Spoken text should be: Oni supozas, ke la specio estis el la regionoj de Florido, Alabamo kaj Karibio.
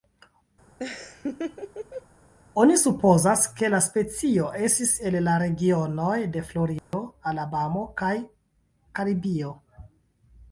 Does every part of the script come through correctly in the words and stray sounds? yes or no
no